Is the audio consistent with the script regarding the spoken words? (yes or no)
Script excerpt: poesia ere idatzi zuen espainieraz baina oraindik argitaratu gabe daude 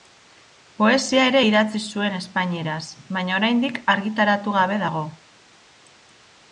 no